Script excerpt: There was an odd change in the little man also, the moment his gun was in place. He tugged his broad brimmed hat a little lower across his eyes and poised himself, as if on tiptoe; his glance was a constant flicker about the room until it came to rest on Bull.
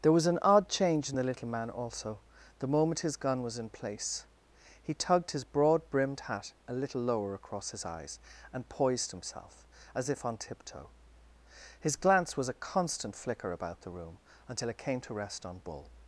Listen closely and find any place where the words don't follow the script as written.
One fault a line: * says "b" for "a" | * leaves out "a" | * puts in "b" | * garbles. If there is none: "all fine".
all fine